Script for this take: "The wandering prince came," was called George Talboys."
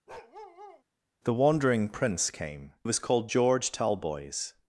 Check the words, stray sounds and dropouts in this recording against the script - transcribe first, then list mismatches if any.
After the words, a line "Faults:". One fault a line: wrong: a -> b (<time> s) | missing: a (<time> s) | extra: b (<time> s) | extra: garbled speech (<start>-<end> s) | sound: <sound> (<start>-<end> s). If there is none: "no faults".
"The wandering prince came," was called George Talboys."
Faults:
sound: bark (0.1-0.8 s)